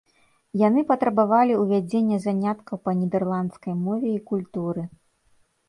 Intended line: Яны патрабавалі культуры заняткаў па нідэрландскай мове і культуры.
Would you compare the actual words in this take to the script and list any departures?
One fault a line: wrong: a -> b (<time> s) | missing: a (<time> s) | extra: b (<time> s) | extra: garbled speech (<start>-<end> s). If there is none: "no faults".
wrong: культуры -> ўвядзення (1.6 s)